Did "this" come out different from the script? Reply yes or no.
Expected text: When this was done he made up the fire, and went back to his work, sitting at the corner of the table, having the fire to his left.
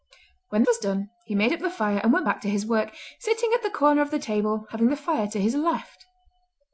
yes